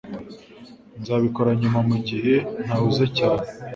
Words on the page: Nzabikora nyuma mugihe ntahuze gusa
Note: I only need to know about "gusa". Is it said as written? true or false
false